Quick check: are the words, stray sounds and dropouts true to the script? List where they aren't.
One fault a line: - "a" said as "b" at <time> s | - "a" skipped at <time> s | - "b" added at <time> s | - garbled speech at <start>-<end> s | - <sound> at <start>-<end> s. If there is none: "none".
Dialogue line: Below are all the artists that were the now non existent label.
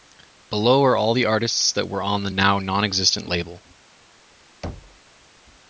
- "on" added at 2.0 s
- thud at 4.6-5.0 s